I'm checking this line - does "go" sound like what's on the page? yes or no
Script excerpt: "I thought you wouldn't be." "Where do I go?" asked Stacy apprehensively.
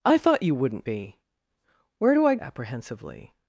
no